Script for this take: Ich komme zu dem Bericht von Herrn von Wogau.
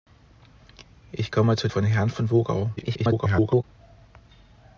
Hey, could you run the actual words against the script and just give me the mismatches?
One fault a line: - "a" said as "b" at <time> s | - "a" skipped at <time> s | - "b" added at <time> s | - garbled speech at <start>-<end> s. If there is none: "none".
- "dem Bericht" skipped at 1.7 s
- garbled speech at 2.8-3.6 s